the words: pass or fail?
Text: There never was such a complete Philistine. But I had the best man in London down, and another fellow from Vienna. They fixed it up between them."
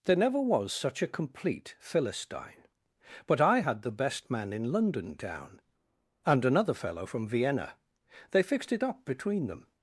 pass